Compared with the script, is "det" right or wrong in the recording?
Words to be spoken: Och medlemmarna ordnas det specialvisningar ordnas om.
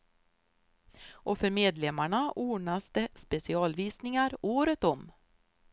right